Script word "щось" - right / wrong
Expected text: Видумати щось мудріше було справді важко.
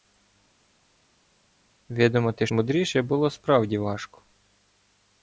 wrong